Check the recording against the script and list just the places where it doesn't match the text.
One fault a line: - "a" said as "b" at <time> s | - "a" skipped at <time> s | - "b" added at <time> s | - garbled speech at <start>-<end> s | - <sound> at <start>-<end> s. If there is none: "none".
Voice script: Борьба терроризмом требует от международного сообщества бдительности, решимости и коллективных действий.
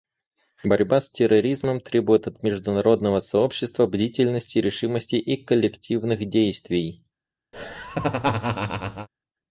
- "с" added at 1.0 s
- laugh at 7.5-9.1 s